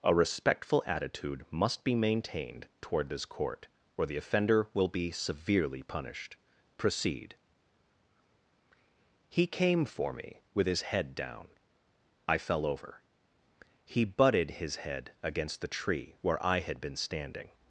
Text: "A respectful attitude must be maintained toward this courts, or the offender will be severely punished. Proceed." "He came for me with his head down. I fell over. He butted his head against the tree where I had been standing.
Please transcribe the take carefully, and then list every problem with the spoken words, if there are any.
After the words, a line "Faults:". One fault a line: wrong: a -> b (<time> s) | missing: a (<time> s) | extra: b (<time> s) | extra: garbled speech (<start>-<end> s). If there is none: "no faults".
"A respectful attitude must be maintained toward this court, or the offender will be severely punished. Proceed." "He came for me with his head down. I fell over. He butted his head against the tree where I had been standing.
Faults:
wrong: courts -> court (3.2 s)